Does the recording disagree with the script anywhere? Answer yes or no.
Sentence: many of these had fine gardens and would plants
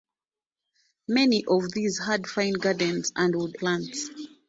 no